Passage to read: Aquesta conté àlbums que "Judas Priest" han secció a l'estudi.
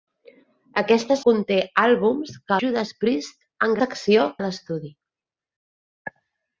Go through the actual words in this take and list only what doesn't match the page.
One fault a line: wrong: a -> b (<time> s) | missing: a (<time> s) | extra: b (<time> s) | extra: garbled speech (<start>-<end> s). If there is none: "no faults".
no faults